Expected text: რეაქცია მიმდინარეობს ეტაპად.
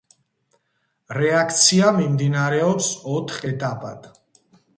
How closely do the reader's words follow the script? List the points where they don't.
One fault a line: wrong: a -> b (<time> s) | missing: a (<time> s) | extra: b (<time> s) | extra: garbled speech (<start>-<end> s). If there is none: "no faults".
extra: ოთხ (3.2 s)